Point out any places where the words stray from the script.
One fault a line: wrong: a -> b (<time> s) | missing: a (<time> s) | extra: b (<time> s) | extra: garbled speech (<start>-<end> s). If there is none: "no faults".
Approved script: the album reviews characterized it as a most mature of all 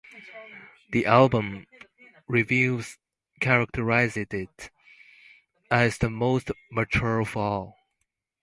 wrong: a -> the (6.0 s)